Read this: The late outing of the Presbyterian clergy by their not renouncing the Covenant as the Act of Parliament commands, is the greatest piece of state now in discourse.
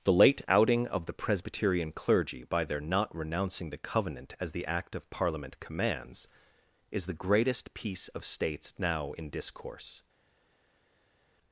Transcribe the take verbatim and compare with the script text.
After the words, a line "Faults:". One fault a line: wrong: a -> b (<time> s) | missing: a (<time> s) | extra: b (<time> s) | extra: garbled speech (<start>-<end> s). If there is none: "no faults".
The late outing of the Presbyterian clergy by their not renouncing the Covenant as the Act of Parliament commands, is the greatest piece of states now in discourse.
Faults:
wrong: state -> states (8.2 s)